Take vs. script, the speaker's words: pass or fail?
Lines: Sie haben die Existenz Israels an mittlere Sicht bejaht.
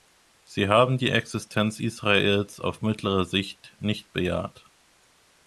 fail